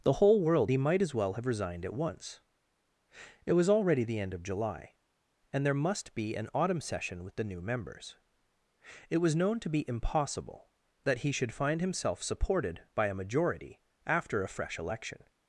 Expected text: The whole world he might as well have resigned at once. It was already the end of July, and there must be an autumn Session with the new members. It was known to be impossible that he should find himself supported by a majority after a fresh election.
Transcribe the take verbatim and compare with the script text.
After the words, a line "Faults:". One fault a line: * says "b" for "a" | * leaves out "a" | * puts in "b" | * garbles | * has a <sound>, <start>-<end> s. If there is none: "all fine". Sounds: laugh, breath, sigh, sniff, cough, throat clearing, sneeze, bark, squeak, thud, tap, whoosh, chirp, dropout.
The whole world he might as well have resigned at once. It was already the end of July, and there must be an autumn Session with the new members. It was known to be impossible that he should find himself supported by a majority after a fresh election.
Faults:
all fine